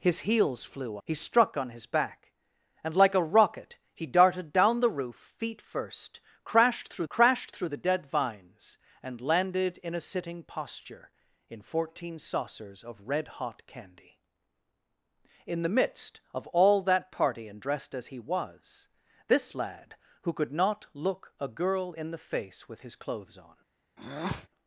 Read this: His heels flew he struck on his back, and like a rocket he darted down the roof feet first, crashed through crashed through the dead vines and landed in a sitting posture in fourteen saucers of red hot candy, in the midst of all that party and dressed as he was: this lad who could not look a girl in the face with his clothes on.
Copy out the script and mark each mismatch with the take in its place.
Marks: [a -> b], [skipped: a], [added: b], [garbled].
His heels flew he struck on his back, and like a rocket he darted down the roof feet first, crashed through crashed through the dead vines and landed in a sitting posture in fourteen saucers of red hot candy, in the midst of all that party and dressed as he was: this lad who could not look a girl in the face with his clothes on.